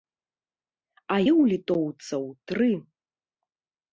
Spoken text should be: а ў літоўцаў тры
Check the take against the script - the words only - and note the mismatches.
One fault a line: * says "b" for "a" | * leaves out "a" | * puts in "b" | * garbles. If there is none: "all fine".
all fine